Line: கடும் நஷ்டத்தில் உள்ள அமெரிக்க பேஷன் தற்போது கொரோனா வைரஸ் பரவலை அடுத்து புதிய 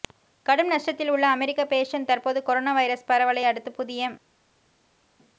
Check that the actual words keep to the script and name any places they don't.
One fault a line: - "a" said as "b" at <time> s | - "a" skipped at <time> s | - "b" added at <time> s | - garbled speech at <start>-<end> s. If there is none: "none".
none